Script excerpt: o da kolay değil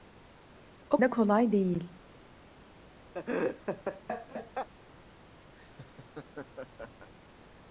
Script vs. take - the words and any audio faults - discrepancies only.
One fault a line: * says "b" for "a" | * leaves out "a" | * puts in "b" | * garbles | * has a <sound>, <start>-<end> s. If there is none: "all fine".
* has a laugh, 3.1-4.7 s
* has a laugh, 5.5-7.1 s